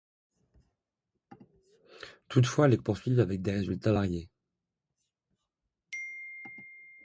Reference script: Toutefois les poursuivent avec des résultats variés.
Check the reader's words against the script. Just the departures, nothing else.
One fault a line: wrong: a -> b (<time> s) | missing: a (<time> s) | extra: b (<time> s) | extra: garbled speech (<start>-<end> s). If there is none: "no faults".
no faults